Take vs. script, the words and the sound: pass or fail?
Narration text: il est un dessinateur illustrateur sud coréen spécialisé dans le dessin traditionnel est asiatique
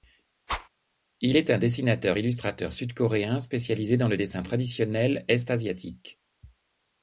fail